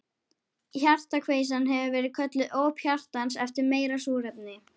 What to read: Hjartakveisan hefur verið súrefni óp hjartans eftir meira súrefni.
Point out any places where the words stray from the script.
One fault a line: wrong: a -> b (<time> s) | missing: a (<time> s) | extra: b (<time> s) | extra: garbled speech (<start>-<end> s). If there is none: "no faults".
wrong: súrefni -> kölluð (2.2 s)